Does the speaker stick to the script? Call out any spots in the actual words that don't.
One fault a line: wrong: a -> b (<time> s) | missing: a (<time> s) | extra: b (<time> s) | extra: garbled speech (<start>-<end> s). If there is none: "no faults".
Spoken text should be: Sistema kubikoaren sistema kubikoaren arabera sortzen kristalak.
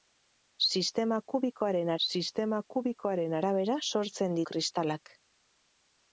no faults